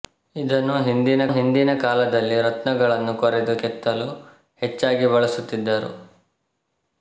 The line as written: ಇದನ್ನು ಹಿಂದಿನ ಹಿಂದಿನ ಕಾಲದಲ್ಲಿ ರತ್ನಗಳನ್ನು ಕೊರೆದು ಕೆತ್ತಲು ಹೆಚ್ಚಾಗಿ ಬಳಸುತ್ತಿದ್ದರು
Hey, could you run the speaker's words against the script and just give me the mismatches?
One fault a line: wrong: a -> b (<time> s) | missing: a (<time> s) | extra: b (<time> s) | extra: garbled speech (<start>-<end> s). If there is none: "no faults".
no faults